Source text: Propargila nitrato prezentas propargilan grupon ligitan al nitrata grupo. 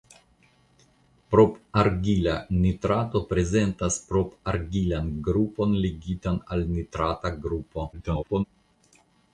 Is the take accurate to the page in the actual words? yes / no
no